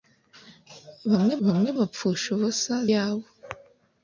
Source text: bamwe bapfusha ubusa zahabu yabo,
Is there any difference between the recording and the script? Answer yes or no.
yes